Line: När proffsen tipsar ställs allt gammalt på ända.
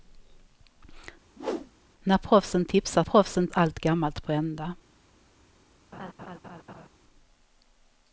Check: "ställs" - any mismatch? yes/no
yes